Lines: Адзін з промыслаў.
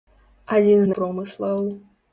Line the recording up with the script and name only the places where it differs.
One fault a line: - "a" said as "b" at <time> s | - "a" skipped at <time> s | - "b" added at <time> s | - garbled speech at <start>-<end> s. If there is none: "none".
none